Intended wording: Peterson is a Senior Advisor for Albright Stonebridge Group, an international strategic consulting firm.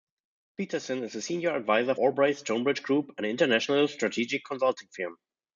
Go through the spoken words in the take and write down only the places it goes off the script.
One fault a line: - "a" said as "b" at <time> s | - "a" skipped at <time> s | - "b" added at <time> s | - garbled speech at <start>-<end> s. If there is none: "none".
- "for" skipped at 1.9 s